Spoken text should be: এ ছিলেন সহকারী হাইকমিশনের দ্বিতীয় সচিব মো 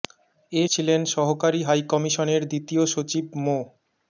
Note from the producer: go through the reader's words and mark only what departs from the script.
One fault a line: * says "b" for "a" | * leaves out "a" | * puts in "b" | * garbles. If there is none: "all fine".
all fine